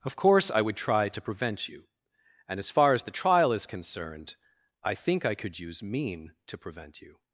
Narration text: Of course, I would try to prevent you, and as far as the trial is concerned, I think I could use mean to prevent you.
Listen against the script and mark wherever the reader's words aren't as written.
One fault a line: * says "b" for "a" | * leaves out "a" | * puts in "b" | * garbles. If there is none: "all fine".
all fine